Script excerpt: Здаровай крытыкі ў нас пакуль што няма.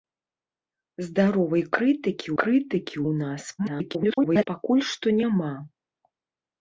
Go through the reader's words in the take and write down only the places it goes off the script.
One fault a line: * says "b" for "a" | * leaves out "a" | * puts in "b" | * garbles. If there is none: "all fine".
* puts in "крытыкі"
* garbles